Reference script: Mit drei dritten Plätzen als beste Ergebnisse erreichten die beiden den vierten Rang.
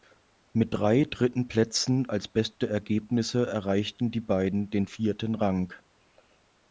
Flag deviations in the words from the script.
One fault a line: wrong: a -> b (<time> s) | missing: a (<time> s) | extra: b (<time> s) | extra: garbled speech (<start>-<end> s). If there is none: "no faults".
no faults